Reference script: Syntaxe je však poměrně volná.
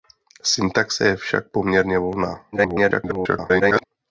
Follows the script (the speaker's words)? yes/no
no